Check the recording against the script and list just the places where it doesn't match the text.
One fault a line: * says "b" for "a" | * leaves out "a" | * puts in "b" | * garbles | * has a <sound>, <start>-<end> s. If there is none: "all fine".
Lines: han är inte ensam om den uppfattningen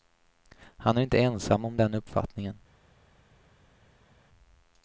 all fine